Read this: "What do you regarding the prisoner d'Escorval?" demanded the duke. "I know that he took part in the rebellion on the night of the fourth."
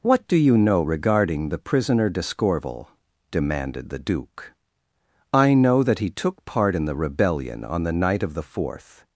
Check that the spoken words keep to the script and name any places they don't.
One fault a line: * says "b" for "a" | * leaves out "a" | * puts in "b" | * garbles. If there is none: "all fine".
* puts in "know"